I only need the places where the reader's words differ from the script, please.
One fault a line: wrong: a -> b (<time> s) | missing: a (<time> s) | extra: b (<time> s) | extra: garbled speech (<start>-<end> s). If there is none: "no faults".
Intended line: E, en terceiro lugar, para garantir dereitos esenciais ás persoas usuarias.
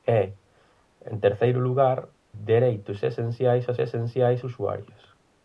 missing: para garantir (2.1 s)
wrong: persoas -> esenciais (3.8 s)